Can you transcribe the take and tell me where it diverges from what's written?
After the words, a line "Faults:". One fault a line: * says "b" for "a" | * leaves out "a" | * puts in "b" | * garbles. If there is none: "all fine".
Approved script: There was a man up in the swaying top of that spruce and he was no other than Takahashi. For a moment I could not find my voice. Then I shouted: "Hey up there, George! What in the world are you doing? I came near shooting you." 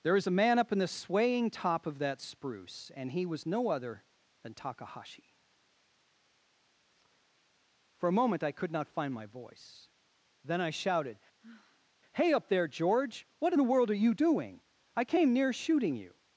There is a man up in the swaying top of that spruce and he was no other than Takahashi. For a moment I could not find my voice. Then I shouted: "Hey up there, George! What in the world are you doing? I came near shooting you."
Faults:
* says "is" for "was"